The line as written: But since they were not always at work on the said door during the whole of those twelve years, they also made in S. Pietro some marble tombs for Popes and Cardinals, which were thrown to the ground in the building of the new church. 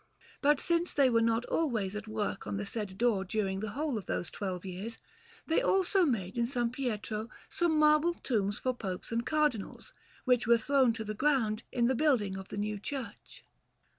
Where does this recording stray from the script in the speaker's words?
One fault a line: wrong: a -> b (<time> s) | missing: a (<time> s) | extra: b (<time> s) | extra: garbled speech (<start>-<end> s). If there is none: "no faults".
no faults